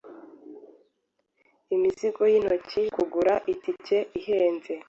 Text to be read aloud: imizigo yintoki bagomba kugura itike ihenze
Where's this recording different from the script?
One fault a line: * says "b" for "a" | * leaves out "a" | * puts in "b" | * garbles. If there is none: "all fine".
* leaves out "bagomba"